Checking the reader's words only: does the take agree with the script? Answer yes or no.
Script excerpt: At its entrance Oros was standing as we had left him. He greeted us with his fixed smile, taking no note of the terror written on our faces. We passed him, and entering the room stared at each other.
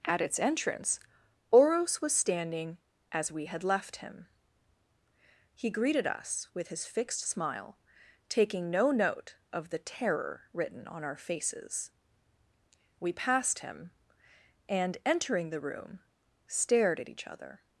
yes